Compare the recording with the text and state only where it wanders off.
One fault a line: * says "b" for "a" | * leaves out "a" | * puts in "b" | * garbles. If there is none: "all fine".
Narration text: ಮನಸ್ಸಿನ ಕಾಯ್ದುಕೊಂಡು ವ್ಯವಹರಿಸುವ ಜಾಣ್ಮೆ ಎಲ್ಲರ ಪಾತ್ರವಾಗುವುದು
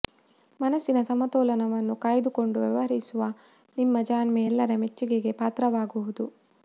* puts in "ಸಮತೋಲನವನ್ನು"
* puts in "ನಿಮ್ಮ"
* puts in "ಮೆಚ್ಚುಗೆಗೆ"